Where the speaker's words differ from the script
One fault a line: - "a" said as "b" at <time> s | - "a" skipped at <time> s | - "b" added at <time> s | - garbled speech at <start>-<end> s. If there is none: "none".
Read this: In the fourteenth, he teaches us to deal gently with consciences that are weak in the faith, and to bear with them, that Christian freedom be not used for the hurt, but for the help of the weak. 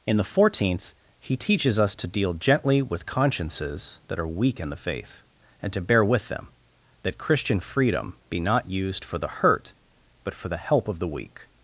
none